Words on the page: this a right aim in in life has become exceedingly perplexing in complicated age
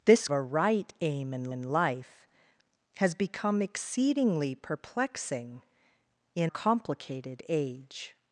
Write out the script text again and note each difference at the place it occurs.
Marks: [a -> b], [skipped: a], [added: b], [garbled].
this a right aim in in life has become exceedingly perplexing in complicated age